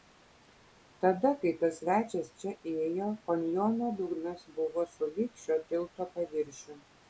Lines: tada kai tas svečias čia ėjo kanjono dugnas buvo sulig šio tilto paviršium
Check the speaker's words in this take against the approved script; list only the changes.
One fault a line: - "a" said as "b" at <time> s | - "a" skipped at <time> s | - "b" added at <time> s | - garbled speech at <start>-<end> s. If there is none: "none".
none